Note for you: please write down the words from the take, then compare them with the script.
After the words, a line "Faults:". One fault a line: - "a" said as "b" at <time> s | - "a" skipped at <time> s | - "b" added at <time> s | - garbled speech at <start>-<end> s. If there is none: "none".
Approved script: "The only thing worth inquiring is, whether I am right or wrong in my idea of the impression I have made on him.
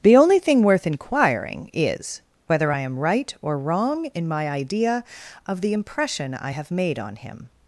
"The only thing worth inquiring is, whether I am right or wrong in my idea of the impression I have made on him.
Faults:
none